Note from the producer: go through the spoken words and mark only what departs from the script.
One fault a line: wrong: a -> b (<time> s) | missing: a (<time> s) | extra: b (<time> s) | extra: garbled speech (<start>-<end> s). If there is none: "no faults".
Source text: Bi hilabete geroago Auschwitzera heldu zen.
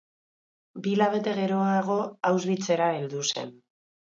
no faults